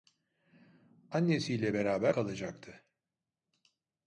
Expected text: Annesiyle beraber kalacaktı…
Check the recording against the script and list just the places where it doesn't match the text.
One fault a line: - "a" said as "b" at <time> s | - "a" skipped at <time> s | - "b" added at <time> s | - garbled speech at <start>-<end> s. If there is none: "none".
none